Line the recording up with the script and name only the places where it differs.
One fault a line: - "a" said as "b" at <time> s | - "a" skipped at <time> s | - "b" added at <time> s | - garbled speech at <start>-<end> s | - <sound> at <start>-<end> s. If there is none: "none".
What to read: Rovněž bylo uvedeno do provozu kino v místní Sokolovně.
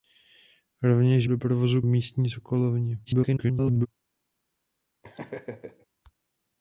- "bylo uvedeno" skipped at 1.3 s
- "kino" skipped at 1.8 s
- garbled speech at 3.0-3.9 s
- laugh at 5.0-5.9 s